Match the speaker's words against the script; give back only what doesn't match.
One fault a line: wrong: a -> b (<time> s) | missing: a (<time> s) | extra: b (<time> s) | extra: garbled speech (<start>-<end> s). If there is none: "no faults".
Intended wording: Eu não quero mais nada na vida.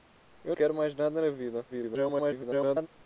missing: não (0.6 s)
extra: garbled speech (1.7-2.9 s)